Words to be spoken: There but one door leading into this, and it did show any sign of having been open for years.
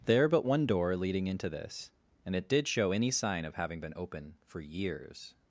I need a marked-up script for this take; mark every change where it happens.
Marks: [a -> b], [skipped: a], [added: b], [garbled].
There but one door leading into this, and it did show any sign of having been open for years.